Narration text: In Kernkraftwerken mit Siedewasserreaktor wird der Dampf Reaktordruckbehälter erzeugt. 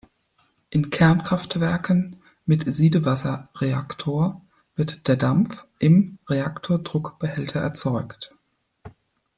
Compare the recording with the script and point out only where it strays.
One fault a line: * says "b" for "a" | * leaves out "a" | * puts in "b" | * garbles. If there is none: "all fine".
* puts in "im"